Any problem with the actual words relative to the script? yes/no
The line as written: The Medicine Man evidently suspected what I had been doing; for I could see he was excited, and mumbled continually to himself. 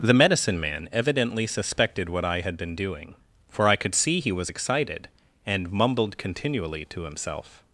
no